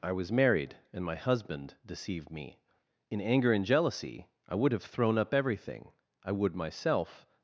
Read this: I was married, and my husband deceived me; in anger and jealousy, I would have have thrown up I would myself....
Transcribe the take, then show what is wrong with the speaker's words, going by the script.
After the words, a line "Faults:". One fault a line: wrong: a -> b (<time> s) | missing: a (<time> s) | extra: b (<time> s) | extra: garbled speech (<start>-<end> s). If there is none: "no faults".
I was married, and my husband deceived me; in anger and jealousy, I would have thrown up everything, I would myself....
Faults:
missing: have (4.8 s)
extra: everything (5.3 s)